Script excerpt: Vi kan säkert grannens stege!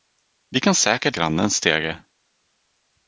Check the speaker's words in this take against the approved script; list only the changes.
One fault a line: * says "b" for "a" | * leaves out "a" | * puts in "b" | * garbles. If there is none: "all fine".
all fine